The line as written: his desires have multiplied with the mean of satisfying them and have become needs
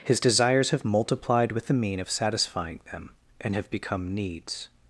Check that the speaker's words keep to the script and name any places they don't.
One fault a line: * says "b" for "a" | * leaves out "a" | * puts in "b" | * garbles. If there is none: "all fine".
all fine